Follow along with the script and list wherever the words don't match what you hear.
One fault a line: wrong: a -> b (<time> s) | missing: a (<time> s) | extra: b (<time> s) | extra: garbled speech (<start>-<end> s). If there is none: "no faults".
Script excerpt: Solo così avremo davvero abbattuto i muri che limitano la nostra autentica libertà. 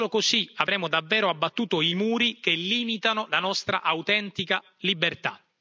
no faults